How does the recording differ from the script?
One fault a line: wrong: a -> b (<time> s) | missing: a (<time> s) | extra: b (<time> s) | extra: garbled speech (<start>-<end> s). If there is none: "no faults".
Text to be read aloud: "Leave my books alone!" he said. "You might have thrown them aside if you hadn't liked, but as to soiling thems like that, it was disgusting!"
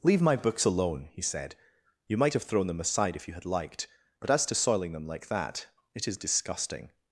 wrong: hadn't -> had (3.4 s)
wrong: thems -> them (4.9 s)
wrong: was -> is (6.1 s)